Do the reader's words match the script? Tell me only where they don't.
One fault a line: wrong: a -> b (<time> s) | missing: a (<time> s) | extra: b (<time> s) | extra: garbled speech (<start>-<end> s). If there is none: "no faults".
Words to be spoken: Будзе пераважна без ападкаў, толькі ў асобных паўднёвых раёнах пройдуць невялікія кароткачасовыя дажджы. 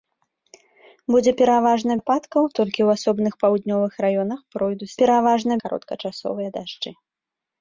missing: без (2.0 s)
wrong: невялікія -> пераважна (5.0 s)